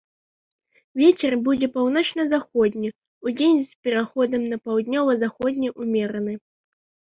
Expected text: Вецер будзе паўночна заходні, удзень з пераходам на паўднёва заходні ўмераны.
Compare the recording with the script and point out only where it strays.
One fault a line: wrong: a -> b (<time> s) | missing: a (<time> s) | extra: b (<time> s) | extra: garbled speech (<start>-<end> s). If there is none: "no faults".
no faults